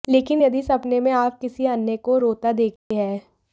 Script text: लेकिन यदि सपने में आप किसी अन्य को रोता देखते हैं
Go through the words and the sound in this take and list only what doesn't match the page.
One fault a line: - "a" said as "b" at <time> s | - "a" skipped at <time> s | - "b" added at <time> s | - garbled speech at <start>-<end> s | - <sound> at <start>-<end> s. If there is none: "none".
- dropout at 2.8-2.9 s